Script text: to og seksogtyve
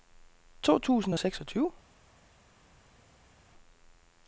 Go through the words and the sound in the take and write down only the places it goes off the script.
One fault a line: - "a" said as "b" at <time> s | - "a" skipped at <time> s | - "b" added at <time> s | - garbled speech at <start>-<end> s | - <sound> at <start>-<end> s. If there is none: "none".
- "tusind" added at 0.8 s